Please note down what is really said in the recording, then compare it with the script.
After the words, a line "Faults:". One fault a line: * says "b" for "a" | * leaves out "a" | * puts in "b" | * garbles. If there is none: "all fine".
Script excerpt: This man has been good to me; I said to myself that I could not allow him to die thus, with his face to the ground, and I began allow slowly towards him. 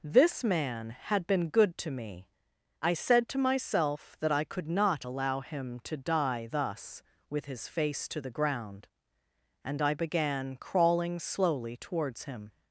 This man had been good to me; I said to myself that I could not allow him to die thus, with his face to the ground, and I began crawling slowly towards him.
Faults:
* says "had" for "has"
* says "crawling" for "allow"